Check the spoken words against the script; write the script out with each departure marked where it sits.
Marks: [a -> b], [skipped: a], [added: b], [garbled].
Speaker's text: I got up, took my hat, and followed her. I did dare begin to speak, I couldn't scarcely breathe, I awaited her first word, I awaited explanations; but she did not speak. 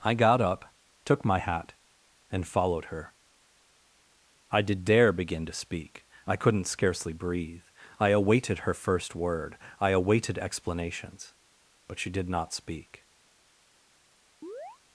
I got up, took my hat, and followed her. I did dare begin to speak, I couldn't scarcely breathe, I awaited her first word, I awaited explanations; but she did not speak.